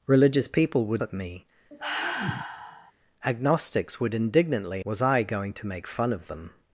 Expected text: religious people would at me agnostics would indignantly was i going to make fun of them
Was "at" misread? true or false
false